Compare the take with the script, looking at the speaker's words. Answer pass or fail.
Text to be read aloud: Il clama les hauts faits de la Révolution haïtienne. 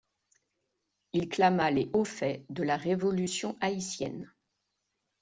pass